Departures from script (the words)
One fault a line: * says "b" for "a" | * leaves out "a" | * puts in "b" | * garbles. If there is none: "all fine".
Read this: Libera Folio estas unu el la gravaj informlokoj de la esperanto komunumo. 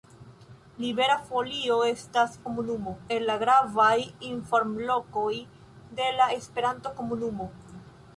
* says "komunumo" for "unu"